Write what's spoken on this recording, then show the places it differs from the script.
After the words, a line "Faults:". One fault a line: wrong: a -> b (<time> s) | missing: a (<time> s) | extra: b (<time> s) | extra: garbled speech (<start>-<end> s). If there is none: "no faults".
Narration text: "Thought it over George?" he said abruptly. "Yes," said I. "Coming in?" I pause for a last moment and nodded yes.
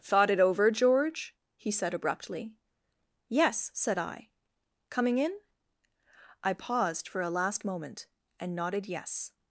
"Thought it over George?" he said abruptly. "Yes," said I. "Coming in?" I paused for a last moment and nodded yes.
Faults:
wrong: pause -> paused (6.5 s)